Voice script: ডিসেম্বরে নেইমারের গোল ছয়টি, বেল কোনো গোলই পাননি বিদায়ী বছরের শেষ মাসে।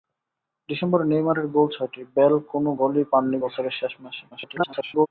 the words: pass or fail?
fail